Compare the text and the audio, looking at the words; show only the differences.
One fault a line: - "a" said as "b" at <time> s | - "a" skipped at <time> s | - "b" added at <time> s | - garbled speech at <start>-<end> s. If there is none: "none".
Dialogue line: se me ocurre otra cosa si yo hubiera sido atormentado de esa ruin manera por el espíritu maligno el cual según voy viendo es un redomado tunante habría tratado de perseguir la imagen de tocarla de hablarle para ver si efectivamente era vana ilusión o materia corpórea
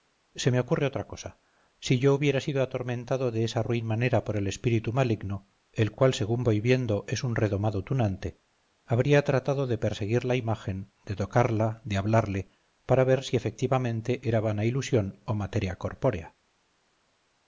none